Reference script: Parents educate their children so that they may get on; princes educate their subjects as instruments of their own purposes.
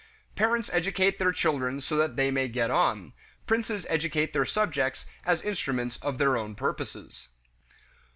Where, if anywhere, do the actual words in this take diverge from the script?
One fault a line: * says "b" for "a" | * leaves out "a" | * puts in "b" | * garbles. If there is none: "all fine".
all fine